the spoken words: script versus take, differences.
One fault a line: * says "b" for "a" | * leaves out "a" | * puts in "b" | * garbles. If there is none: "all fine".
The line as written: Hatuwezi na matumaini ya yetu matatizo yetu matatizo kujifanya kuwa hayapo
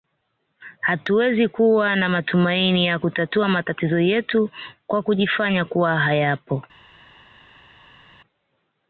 * puts in "kuwa"
* says "kutatua" for "yetu"
* says "kwa" for "matatizo"